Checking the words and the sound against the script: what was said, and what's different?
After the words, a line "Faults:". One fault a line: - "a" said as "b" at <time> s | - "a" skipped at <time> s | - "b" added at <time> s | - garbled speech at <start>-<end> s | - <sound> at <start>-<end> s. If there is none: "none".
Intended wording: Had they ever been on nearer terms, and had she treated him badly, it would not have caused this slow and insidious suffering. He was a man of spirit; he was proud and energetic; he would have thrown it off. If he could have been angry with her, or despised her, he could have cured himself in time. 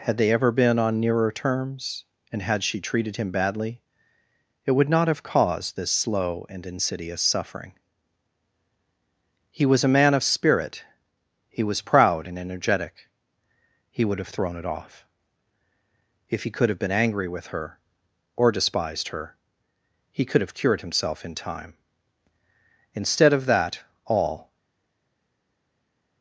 Had they ever been on nearer terms, and had she treated him badly, it would not have caused this slow and insidious suffering. He was a man of spirit; he was proud and energetic; he would have thrown it off. If he could have been angry with her, or despised her, he could have cured himself in time. Instead of that, all
Faults:
- "Instead of that all" added at 23.0 s